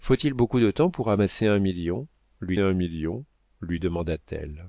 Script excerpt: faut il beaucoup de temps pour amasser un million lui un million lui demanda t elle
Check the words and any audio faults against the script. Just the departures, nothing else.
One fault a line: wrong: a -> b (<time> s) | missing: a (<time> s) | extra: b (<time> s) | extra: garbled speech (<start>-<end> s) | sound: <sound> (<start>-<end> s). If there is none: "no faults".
no faults